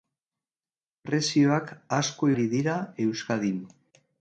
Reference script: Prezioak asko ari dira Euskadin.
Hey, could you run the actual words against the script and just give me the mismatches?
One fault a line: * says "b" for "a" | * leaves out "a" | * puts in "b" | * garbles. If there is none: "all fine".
all fine